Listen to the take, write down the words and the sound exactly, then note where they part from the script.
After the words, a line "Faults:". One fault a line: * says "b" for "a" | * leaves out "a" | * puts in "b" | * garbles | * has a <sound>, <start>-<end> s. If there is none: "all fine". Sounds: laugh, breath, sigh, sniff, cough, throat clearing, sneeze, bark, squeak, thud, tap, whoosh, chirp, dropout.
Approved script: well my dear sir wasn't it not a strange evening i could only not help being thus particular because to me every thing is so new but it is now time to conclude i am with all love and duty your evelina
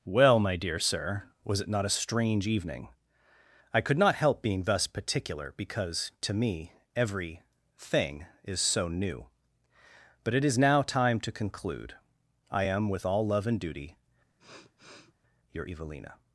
well my dear sir was it not a strange evening i could not help being thus particular because to me every thing is so new but it is now time to conclude i am with all love and duty your evelina
Faults:
* says "was" for "wasn't"
* leaves out "only"
* has a sniff, 14.4-15.1 s